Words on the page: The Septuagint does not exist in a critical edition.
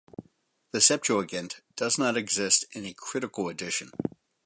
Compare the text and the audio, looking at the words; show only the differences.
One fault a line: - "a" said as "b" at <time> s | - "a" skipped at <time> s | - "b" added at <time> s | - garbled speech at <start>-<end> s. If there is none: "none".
none